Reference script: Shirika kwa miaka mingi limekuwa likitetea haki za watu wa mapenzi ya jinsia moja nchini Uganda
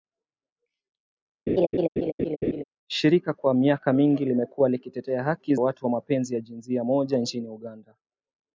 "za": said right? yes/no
no